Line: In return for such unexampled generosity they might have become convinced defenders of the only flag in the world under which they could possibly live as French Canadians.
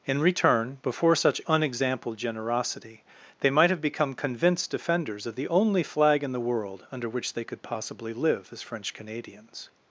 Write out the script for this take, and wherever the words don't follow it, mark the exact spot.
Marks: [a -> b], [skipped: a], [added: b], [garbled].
In return [for -> before] such unexampled generosity they might have become convinced defenders of the only flag in the world under which they could possibly live as French Canadians.